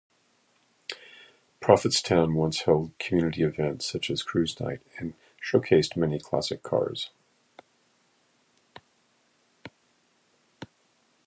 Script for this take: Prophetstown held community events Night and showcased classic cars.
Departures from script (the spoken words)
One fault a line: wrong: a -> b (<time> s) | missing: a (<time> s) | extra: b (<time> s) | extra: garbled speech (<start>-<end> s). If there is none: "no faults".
extra: once (2.3 s)
extra: such as Cruise (3.9 s)
extra: many (6.0 s)